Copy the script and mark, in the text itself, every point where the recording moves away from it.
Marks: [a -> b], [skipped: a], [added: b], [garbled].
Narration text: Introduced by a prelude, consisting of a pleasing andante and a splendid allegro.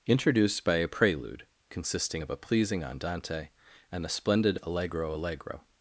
Introduced by a prelude, consisting of a pleasing andante and a splendid allegro. [added: allegro]